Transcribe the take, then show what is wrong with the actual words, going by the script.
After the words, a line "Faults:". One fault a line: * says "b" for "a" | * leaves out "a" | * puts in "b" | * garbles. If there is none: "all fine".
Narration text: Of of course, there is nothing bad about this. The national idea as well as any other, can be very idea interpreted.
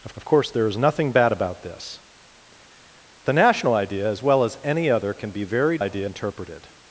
Of of course, there is nothing bad about this. The national idea as well as any other, can be very idea interpreted.
Faults:
all fine